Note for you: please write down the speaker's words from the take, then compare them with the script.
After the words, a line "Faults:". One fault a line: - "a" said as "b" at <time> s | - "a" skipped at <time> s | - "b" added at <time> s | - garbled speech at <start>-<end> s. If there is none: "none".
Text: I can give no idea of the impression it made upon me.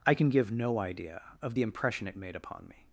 I can give no idea of the impression it made upon me.
Faults:
none